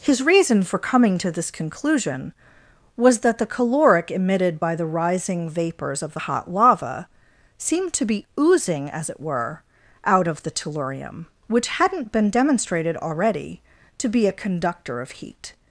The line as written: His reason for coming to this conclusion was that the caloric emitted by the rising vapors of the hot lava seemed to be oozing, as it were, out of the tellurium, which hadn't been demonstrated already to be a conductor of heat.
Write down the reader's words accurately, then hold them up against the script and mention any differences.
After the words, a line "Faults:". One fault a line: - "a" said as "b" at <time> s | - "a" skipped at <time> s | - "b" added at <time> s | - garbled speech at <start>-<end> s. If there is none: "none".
His reason for coming to this conclusion was that the caloric emitted by the rising vapors of the hot lava seemed to be oozing, as it were, out of the tellurium, which hadn't been demonstrated already to be a conductor of heat.
Faults:
none